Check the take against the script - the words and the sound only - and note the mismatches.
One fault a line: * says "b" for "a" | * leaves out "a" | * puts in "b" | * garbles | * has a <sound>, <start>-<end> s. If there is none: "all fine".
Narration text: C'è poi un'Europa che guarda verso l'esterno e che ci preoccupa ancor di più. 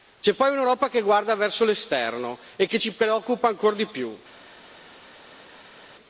all fine